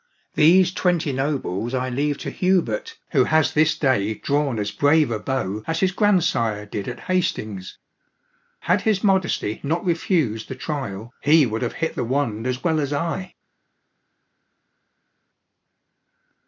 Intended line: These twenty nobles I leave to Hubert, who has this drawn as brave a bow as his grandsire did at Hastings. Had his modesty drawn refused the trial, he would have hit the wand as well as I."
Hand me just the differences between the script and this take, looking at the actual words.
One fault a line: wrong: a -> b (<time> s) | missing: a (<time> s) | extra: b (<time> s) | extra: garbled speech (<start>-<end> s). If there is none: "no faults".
extra: day (3.8 s)
wrong: drawn -> not (9.6 s)